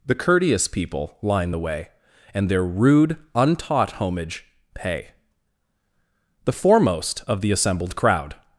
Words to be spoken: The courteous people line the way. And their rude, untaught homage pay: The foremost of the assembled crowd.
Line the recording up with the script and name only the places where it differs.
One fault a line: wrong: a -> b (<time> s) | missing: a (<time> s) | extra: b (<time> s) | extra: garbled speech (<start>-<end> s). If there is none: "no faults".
no faults